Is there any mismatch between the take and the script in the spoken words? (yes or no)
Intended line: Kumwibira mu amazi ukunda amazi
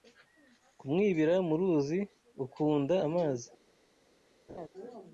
yes